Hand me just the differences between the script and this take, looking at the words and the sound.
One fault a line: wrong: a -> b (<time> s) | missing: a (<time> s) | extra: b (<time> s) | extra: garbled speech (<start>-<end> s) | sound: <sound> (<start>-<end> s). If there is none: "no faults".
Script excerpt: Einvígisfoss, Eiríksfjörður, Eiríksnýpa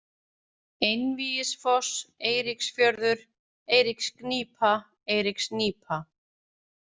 extra: Eiríksgnýpa (3.8 s)